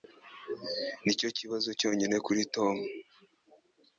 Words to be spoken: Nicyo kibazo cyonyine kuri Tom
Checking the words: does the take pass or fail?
pass